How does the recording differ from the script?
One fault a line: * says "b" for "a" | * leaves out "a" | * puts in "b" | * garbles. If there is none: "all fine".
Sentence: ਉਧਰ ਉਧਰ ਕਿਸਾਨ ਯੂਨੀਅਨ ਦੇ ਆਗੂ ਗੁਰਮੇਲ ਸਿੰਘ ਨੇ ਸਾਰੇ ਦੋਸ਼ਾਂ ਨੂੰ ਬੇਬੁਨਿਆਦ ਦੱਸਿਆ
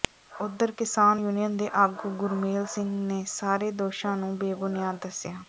* leaves out "ਉਧਰ"